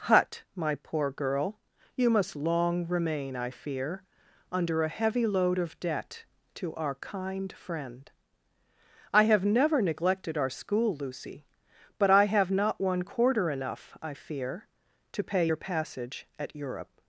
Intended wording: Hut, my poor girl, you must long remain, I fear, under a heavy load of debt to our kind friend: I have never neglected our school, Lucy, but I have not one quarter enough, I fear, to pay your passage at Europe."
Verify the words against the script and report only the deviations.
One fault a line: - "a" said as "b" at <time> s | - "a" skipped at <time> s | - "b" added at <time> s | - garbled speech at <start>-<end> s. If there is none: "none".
none